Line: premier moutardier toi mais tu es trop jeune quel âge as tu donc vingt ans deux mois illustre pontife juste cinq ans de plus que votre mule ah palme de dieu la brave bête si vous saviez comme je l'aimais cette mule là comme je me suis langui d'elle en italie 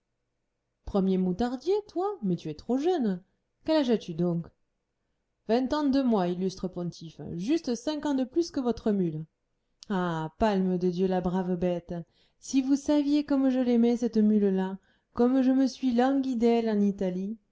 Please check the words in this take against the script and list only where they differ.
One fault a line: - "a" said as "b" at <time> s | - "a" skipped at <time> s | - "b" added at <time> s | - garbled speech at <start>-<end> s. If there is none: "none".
none